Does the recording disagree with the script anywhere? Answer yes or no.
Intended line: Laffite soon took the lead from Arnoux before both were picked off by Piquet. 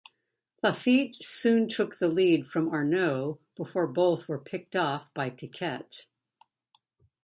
no